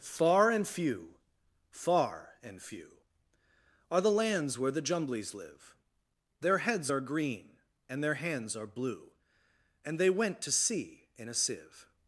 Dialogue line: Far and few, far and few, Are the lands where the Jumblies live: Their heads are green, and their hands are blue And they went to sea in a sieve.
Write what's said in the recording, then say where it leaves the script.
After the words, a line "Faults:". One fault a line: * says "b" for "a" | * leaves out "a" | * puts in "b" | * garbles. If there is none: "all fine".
Far and few, far and few, Are the lands where the Jumblies live: Their heads are green, and their hands are blue And they went to sea in a sieve.
Faults:
all fine